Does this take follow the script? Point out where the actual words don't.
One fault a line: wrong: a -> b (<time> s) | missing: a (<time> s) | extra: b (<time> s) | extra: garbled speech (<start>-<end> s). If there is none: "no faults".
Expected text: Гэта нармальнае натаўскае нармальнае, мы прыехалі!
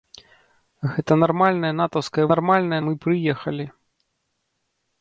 no faults